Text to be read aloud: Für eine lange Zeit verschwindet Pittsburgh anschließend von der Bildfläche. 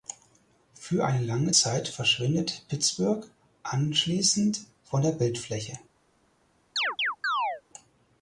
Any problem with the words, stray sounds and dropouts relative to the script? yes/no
yes